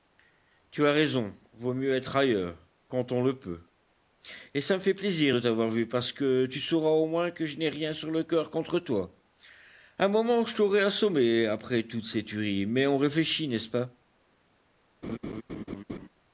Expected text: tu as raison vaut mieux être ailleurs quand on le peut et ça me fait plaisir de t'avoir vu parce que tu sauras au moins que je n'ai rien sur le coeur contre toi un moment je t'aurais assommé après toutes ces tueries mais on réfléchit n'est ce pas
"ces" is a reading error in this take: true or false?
false